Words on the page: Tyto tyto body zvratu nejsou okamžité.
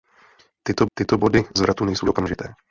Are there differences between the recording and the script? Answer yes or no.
no